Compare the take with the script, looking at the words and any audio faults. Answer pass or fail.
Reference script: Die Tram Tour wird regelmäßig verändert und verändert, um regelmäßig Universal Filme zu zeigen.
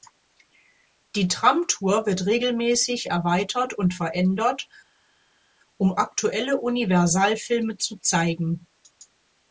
fail